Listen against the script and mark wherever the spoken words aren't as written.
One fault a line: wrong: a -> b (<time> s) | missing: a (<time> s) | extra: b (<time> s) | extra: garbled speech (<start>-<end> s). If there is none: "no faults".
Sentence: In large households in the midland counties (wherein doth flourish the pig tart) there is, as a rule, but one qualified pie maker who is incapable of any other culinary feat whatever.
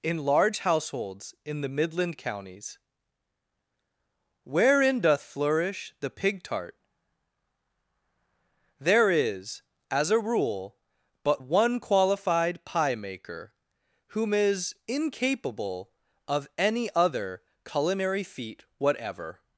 wrong: who -> whom (14.1 s)